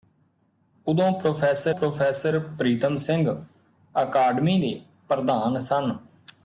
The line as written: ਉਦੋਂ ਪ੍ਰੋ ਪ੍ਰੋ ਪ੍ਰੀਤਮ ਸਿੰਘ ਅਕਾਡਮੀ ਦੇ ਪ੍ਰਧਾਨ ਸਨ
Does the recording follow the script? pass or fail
pass